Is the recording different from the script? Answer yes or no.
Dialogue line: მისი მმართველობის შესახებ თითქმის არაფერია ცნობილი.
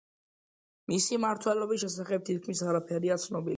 no